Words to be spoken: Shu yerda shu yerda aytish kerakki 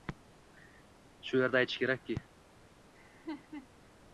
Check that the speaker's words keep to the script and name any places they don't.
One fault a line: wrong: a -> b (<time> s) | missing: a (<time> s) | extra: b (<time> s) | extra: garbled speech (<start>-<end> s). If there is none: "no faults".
missing: shu yerda (1.6 s)